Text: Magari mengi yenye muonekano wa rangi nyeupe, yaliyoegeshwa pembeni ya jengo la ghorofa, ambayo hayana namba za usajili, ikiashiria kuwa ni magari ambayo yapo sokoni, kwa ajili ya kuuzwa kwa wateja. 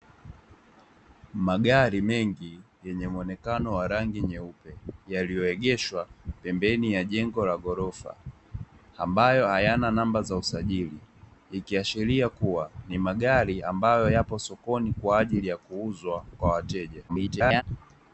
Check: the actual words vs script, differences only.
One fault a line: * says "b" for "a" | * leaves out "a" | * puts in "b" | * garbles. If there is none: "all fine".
* garbles